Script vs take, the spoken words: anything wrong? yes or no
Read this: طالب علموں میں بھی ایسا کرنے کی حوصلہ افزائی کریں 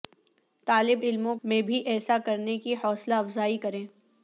no